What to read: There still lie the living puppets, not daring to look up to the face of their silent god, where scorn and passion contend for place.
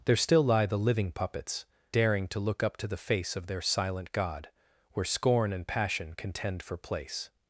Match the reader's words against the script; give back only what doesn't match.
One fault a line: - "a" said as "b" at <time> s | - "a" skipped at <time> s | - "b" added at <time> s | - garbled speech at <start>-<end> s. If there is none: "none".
- "not" skipped at 1.6 s